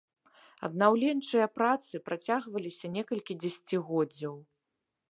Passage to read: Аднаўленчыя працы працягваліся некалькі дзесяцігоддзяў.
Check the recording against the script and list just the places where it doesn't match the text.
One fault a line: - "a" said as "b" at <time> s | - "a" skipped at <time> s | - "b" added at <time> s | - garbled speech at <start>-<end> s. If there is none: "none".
none